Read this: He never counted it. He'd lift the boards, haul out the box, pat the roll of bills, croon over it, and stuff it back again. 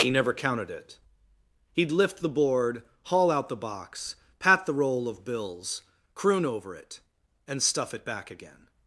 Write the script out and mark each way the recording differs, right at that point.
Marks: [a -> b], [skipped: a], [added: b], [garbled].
He never counted it. He'd lift the [boards, -> board] haul out the box, pat the roll of bills, croon over it, and stuff it back again.